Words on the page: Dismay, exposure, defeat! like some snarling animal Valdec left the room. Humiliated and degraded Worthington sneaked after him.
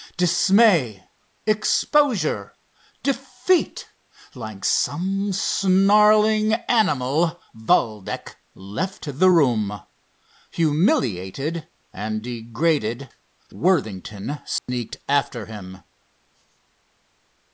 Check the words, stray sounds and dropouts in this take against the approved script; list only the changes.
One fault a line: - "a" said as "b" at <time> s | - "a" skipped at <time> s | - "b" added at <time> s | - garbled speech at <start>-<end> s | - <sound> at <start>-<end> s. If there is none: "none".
- dropout at 14.6-14.7 s